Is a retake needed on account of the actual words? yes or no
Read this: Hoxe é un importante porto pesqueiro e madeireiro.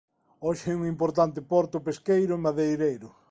no